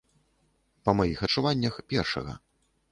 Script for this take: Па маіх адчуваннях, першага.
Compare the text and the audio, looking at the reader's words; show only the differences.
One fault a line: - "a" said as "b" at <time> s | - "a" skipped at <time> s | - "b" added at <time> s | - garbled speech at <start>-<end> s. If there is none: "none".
none